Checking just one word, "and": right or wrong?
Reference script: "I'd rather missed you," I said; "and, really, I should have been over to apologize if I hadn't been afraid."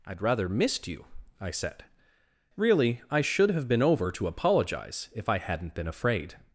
wrong